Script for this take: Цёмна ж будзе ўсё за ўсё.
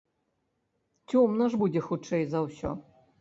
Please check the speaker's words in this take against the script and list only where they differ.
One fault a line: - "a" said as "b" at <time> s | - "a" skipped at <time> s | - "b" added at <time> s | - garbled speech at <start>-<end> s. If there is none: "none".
- "ўсё" said as "хутчэй" at 1.9 s